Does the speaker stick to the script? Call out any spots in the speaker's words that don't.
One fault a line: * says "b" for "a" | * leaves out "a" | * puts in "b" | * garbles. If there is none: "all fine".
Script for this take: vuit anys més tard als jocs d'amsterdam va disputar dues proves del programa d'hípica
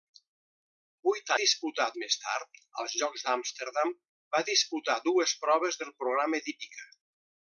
* says "disputar" for "anys"